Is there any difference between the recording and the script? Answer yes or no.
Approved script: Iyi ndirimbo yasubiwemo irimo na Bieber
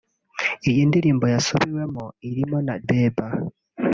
no